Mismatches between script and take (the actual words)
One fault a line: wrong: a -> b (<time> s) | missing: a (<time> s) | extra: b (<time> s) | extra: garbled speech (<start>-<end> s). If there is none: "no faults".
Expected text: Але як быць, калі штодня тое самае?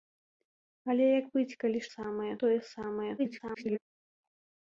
wrong: штодня -> самае (1.9 s)
extra: garbled speech (3.2-3.8 s)